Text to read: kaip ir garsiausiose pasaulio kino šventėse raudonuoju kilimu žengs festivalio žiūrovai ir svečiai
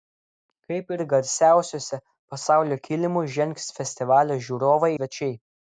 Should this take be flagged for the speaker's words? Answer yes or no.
yes